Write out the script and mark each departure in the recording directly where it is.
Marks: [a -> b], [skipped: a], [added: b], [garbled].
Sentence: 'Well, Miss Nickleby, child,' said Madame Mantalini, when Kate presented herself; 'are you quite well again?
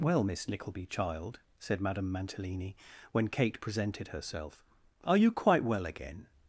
'Well, Miss Nickleby, child,' said Madame Mantalini, when Kate presented herself; 'are you quite well again?